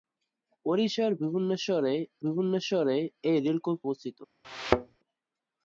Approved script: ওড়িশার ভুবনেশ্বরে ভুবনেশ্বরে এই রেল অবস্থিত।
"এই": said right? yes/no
yes